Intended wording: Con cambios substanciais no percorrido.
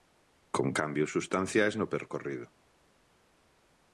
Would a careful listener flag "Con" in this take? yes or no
no